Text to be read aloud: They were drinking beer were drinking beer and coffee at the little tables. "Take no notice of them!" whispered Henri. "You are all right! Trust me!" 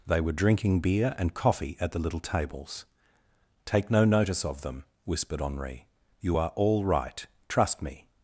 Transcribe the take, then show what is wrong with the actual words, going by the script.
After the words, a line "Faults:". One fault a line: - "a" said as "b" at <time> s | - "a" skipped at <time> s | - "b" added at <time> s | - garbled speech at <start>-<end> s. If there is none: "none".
They were drinking beer and coffee at the little tables. "Take no notice of them!" whispered Henri. "You are all right! Trust me!"
Faults:
- "were drinking beer" skipped at 1.1 s